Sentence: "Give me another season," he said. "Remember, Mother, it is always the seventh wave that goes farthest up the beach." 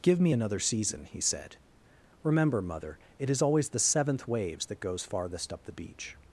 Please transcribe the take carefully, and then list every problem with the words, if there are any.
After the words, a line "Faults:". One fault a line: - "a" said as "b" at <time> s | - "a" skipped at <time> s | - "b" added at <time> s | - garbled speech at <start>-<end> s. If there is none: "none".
"Give me another season," he said. "Remember, Mother, it is always the seventh waves that goes farthest up the beach."
Faults:
- "wave" said as "waves" at 4.3 s